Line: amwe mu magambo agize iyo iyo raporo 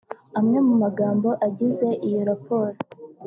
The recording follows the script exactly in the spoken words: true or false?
false